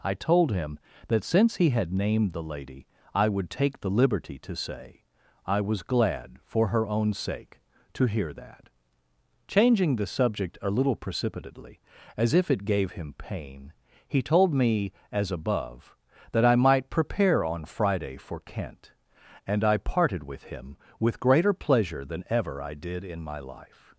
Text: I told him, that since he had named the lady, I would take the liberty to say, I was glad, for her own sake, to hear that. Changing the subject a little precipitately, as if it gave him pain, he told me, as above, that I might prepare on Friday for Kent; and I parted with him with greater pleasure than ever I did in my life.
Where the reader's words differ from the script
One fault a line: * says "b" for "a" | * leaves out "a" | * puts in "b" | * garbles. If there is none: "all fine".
all fine